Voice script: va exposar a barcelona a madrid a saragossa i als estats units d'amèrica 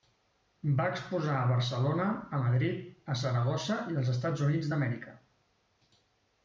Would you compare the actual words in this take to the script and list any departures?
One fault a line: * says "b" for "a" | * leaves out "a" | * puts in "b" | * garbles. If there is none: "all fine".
all fine